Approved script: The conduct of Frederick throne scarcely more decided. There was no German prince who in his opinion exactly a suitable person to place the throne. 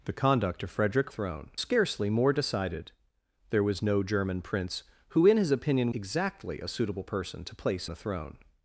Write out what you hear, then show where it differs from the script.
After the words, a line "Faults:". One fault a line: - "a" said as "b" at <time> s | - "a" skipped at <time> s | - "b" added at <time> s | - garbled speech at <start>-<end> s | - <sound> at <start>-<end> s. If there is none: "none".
The conduct of Frederick throne scarcely more decided. There was no German prince who in his opinion exactly a suitable person to place the throne.
Faults:
none